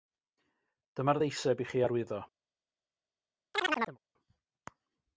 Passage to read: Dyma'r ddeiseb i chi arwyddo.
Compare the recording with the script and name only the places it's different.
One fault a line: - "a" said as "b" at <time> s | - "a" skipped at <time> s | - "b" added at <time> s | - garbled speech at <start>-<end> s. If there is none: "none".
none